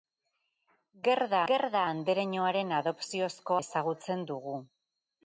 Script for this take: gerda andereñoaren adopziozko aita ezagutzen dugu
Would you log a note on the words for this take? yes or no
yes